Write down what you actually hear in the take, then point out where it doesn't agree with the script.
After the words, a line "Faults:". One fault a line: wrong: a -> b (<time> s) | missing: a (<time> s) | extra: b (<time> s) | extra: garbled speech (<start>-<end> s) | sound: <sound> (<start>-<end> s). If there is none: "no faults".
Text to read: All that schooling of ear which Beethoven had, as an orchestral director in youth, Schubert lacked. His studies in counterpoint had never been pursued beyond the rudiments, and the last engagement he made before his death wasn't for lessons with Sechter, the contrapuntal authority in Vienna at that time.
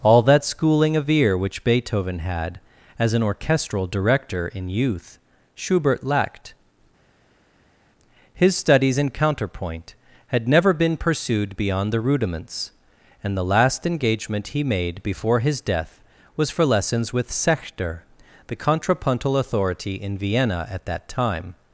All that schooling of ear which Beethoven had, as an orchestral director in youth, Schubert lacked. His studies in counterpoint had never been pursued beyond the rudiments, and the last engagement he made before his death was for lessons with Sechter, the contrapuntal authority in Vienna at that time.
Faults:
wrong: wasn't -> was (16.4 s)